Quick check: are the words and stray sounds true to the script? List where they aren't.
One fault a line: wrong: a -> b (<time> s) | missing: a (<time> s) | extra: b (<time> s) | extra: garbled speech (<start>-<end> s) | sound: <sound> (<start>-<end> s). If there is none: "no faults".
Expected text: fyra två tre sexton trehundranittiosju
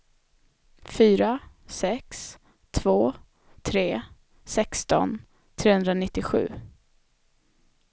extra: sex (1.6 s)